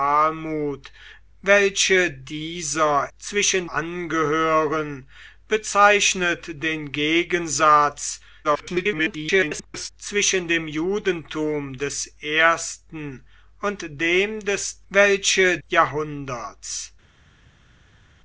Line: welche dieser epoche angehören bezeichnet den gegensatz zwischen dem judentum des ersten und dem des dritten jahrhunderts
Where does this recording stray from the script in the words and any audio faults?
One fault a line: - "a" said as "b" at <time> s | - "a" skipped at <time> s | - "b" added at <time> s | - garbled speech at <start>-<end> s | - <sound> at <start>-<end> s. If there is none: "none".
- "epoche" said as "zwischen" at 3.2 s
- garbled speech at 8.4-9.9 s
- "dritten" said as "welche" at 14.9 s